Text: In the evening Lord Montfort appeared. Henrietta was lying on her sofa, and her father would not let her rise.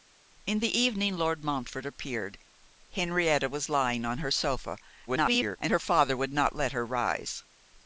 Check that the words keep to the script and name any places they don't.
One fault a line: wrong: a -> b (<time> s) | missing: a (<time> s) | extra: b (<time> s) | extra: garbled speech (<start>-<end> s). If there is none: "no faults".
extra: garbled speech (5.1-5.6 s)